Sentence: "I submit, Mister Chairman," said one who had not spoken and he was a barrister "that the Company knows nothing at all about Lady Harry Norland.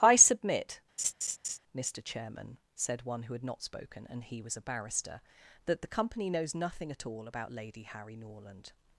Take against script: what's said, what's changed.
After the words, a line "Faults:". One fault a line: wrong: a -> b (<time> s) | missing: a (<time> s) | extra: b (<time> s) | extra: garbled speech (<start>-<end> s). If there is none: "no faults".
"I submit, Mister Chairman," said one who had not spoken and he was a barrister "that the Company knows nothing at all about Lady Harry Norland.
Faults:
no faults